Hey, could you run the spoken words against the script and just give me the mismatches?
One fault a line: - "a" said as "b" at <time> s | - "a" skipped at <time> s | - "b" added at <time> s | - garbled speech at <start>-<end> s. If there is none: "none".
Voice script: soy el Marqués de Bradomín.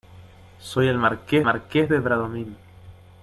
- "Marqués" added at 1.4 s